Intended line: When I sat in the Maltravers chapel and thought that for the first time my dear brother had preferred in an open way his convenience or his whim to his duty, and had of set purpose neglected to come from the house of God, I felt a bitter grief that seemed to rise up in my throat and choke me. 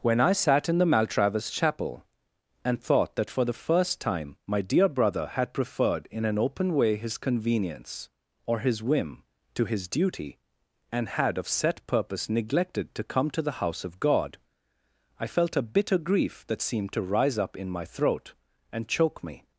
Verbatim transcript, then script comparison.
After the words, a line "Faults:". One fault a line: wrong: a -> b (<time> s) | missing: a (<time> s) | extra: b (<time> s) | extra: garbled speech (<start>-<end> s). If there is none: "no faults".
When I sat in the Maltravers chapel and thought that for the first time my dear brother had preferred in an open way his convenience or his whim to his duty, and had of set purpose neglected to come to the house of God, I felt a bitter grief that seemed to rise up in my throat and choke me.
Faults:
wrong: from -> to (13.3 s)